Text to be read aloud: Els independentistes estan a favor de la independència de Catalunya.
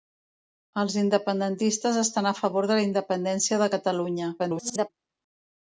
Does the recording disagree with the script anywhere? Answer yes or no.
yes